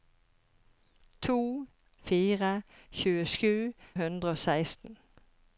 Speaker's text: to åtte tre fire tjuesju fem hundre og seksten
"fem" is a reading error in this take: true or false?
true